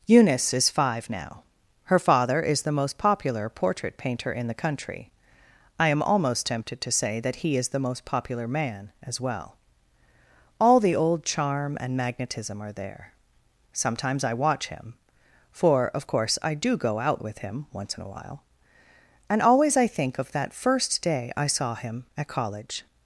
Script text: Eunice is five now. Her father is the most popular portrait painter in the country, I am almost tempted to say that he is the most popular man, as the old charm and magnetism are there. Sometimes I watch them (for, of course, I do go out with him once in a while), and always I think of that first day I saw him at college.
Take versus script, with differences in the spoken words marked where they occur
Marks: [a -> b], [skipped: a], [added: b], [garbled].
Eunice is five now. Her father is the most popular portrait painter in the country, I am almost tempted to say that he is the most popular man, as [added: well All] the old charm and magnetism are there. Sometimes I watch [them -> him] (for, of course, I do go out with him once in a while), and always I think of that first day I saw him at college.